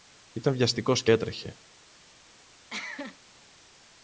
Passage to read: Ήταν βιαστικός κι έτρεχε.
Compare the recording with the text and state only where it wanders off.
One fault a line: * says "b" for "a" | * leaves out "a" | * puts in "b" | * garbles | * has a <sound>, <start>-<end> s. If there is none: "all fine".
* has a cough, 2.7-3.2 s